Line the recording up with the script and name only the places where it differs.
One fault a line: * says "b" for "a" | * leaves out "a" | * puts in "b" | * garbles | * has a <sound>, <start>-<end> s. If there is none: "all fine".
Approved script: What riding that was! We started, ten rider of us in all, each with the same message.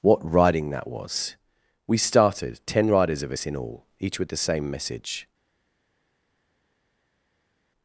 * says "riders" for "rider"